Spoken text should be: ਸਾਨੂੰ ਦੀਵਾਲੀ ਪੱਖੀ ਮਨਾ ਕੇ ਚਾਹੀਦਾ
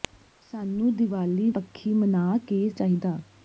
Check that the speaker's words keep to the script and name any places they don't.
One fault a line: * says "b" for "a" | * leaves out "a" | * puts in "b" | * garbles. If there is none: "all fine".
all fine